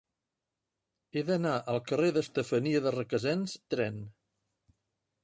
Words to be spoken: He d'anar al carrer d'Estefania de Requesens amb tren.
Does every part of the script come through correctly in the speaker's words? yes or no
no